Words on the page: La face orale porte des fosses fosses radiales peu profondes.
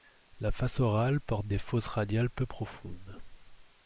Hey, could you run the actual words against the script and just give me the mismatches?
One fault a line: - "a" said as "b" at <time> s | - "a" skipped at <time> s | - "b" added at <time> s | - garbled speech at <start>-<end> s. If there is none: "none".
- "fosses" skipped at 1.9 s